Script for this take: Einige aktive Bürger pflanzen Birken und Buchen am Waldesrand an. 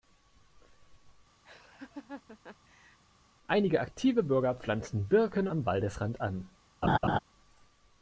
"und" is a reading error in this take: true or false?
true